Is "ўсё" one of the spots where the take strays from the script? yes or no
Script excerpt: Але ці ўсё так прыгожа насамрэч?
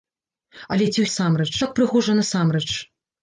yes